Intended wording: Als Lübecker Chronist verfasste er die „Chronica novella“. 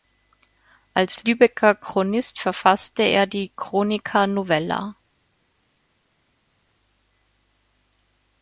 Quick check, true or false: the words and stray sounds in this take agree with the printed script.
true